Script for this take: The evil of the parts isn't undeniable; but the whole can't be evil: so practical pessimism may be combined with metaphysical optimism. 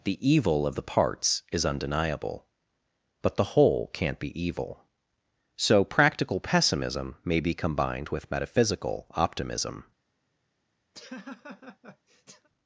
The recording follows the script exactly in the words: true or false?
false